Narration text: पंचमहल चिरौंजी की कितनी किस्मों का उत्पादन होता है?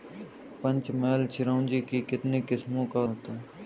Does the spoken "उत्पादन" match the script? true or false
false